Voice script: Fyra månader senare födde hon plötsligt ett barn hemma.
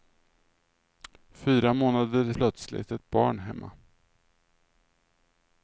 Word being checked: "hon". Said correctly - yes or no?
no